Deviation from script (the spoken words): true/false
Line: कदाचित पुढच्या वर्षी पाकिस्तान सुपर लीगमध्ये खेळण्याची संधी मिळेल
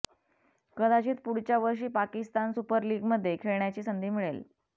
false